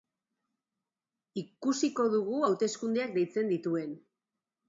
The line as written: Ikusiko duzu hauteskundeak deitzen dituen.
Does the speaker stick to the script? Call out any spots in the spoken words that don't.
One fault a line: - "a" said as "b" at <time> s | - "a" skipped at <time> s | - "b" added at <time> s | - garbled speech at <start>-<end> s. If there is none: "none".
- "duzu" said as "dugu" at 2.1 s